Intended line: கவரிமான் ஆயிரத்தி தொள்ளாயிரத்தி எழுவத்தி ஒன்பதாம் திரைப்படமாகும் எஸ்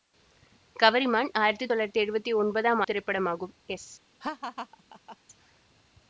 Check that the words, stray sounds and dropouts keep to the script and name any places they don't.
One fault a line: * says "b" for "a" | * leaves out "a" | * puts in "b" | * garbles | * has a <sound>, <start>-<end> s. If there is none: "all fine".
* has a laugh, 4.2-5.2 s